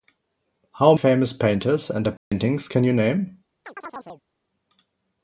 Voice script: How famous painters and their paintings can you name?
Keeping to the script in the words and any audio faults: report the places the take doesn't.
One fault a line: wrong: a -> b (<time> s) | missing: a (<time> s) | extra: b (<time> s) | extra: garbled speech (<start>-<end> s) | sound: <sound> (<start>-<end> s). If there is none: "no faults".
sound: dropout (2.2-2.3 s)
sound: chirp (3.7-4.2 s)